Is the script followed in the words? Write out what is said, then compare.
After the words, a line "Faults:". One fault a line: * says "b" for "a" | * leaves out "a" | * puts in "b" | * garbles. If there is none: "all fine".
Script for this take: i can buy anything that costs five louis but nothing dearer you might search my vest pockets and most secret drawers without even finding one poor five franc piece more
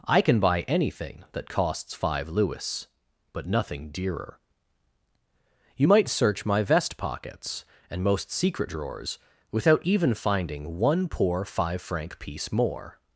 i can buy anything that costs five louis but nothing dearer you might search my vest pockets and most secret drawers without even finding one poor five franc piece more
Faults:
all fine